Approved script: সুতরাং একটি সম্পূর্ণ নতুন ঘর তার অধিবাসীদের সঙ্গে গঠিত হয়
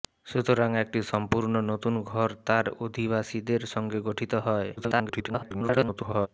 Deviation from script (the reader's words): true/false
true